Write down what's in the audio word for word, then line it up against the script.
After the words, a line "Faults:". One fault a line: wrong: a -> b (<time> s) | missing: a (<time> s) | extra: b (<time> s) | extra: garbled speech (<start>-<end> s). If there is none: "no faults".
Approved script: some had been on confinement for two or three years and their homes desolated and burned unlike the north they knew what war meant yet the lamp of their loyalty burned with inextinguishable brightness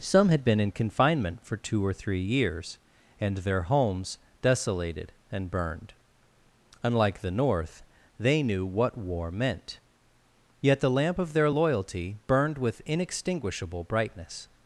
some had been in confinement for two or three years and their homes desolated and burned unlike the north they knew what war meant yet the lamp of their loyalty burned with inextinguishable brightness
Faults:
wrong: on -> in (0.6 s)